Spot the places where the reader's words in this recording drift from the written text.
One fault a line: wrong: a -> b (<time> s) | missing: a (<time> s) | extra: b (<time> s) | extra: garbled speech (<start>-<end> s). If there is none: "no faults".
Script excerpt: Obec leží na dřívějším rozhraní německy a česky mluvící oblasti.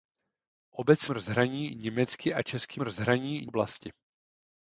missing: leží na dřívějším (1.1 s)
wrong: mluvící -> rozhraní (2.8 s)